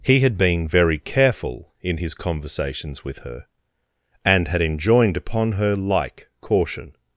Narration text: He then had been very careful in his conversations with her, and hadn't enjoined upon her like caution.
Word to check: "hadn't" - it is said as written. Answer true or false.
false